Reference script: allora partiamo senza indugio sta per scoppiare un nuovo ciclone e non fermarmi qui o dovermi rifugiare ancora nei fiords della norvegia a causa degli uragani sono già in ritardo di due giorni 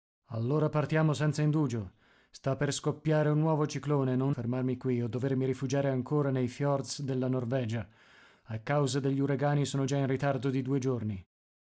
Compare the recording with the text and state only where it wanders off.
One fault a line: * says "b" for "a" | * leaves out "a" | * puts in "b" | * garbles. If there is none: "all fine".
all fine